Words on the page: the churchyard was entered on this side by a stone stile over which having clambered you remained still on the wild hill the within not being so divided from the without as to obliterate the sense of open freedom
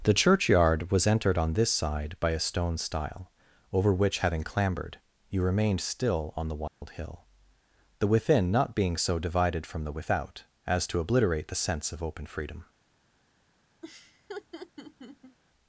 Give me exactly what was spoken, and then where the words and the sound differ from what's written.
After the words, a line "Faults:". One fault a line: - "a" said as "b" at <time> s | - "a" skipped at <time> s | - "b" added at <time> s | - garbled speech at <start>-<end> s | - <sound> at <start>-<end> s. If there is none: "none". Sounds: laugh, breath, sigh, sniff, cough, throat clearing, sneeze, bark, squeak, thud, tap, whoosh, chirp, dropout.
the churchyard was entered on this side by a stone stile over which having clambered you remained still on the wild hill the within not being so divided from the without as to obliterate the sense of open freedom
Faults:
- dropout at 6.7-6.8 s
- laugh at 13.8-15.4 s